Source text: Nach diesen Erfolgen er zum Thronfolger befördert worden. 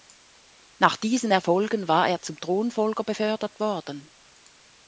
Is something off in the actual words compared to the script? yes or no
yes